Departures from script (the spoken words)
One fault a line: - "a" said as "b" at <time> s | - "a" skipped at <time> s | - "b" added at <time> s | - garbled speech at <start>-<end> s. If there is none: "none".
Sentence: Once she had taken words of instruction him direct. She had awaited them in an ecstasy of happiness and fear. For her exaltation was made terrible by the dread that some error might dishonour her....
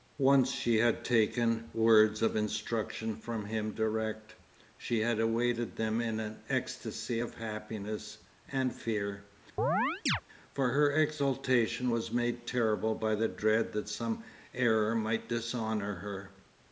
- "from" added at 3.1 s